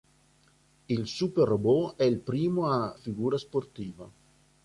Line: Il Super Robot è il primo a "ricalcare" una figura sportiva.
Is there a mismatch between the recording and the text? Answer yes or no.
yes